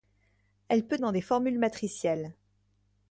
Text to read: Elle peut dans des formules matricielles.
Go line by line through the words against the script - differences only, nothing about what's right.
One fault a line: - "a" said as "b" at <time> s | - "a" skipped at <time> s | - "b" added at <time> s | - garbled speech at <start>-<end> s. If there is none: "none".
none